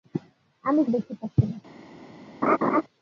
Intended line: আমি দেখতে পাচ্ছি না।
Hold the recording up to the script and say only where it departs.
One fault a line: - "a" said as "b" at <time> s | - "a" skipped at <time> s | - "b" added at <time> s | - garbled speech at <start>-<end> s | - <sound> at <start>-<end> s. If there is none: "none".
- laugh at 2.4-2.8 s